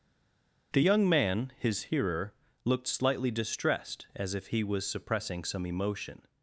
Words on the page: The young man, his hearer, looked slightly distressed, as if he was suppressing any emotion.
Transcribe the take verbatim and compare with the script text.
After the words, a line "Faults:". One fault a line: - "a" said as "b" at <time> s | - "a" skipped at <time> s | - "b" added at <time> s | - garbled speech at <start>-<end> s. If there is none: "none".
The young man, his hearer, looked slightly distressed, as if he was suppressing some emotion.
Faults:
- "any" said as "some" at 5.4 s